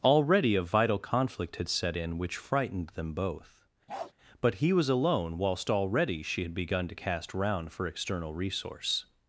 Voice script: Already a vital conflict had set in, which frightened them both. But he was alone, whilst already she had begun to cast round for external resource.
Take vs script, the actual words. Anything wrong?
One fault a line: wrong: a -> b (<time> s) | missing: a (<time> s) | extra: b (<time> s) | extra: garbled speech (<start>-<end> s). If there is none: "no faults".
no faults